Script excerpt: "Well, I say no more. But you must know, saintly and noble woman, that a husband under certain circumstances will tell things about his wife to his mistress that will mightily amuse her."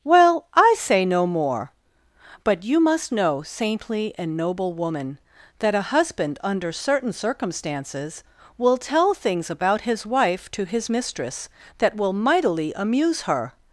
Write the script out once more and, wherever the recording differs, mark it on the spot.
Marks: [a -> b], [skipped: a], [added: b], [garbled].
"Well, I say no more. But you must know, saintly and noble woman, that a husband under certain circumstances will tell things about his wife to his mistress that will mightily amuse her."